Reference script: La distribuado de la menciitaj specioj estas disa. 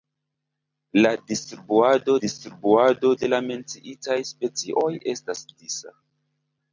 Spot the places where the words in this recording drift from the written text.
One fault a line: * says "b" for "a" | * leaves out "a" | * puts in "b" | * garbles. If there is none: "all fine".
* puts in "distribuado"